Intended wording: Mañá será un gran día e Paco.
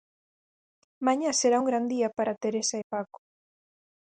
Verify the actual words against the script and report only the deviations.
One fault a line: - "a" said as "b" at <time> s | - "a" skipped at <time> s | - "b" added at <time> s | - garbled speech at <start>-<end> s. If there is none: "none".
- "para Teresa" added at 2.2 s